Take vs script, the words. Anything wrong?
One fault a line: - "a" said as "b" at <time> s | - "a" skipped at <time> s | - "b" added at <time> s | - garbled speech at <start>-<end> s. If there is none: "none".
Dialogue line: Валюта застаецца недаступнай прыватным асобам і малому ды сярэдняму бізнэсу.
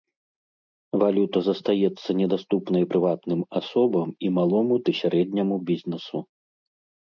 none